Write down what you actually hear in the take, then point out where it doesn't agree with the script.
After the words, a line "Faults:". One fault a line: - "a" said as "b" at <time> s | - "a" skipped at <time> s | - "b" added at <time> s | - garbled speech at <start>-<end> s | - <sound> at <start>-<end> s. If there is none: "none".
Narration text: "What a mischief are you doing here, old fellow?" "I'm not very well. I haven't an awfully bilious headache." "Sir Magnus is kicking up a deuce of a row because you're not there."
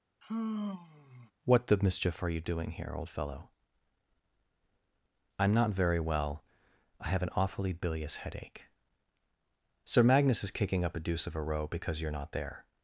"What the mischief are you doing here, old fellow?" "I'm not very well. I have an awfully bilious headache." "Sir Magnus is kicking up a deuce of a row because you're not there."
Faults:
- sigh at 0.2-1.3 s
- "a" said as "the" at 1.7 s
- "haven't" said as "have" at 7.1 s